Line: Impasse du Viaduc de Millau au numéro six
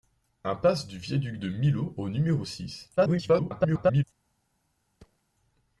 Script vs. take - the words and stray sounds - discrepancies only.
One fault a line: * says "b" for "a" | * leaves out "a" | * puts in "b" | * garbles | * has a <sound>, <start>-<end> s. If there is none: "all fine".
* garbles
* has a thud, 5.0-5.2 s